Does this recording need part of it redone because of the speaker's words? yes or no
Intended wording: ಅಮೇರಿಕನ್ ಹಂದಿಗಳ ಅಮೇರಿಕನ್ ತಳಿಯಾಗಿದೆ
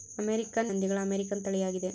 no